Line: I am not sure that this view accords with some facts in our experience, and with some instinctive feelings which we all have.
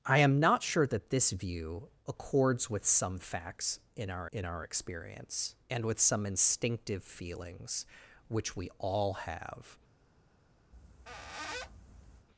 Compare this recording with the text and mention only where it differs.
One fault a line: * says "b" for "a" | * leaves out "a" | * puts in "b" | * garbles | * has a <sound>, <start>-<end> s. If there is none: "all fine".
* puts in "in our"
* has a squeak, 10.7-12.3 s